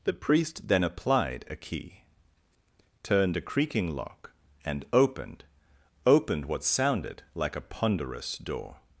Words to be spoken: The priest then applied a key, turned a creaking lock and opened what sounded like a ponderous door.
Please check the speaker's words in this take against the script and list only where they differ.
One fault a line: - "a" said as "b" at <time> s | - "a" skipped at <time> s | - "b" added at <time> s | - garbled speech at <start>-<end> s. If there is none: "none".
- "opened" added at 6.1 s